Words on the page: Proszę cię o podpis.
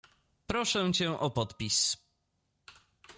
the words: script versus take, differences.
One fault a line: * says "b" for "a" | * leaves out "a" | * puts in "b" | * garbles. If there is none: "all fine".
all fine